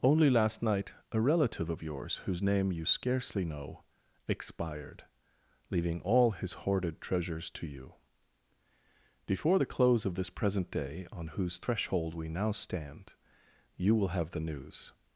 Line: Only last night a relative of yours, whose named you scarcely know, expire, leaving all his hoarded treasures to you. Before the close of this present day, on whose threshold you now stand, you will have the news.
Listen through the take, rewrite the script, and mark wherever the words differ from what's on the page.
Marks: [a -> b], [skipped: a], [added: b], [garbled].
Only last night a relative of yours, whose [named -> name] you scarcely know, [expire, -> expired] leaving all his hoarded treasures to you. Before the close of this present day, on whose threshold [you -> we] now stand, you will have the news.